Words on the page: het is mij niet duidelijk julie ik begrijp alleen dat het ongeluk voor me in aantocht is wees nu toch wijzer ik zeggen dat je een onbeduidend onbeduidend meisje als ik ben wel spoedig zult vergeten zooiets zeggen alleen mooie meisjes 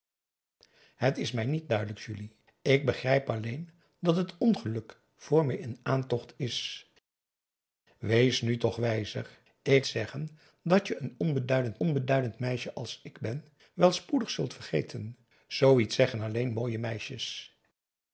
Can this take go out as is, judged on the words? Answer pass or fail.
pass